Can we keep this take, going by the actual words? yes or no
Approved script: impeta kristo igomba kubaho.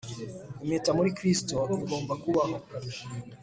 no